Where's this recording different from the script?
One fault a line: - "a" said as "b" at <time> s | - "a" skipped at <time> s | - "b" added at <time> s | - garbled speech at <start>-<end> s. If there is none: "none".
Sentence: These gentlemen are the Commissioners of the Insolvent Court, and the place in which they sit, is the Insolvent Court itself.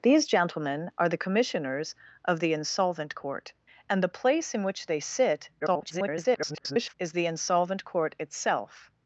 - garbled speech at 5.6-6.9 s